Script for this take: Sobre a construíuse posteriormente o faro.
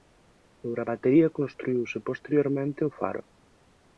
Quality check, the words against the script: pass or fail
fail